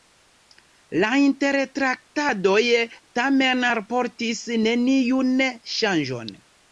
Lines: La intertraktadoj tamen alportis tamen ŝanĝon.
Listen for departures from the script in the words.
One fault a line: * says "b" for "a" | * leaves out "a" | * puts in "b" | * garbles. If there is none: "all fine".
* says "neniun" for "tamen"